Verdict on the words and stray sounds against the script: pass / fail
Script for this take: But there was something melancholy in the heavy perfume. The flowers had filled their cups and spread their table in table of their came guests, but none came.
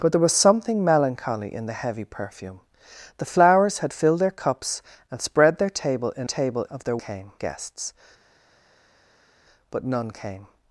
pass